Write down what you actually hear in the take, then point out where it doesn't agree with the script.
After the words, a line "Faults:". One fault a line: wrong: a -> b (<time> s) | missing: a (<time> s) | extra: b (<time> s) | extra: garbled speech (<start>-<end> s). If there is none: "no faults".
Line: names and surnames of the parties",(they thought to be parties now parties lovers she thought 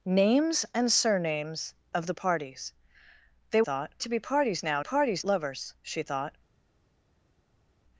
names and surnames of the parties",(they thought to be parties now parties lovers she thought
Faults:
no faults